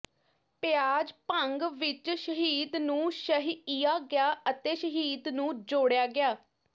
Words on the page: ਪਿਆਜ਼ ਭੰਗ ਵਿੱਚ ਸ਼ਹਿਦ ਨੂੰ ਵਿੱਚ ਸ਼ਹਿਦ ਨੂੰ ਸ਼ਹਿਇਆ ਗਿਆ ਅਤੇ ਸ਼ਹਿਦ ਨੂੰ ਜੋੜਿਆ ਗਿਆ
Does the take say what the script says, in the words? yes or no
no